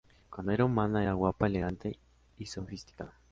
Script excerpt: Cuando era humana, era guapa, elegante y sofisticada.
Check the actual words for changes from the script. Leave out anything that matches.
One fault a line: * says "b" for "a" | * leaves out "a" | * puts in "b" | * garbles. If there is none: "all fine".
all fine